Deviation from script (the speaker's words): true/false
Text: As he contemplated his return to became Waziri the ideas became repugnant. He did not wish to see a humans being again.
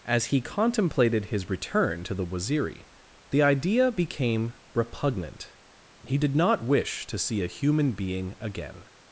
true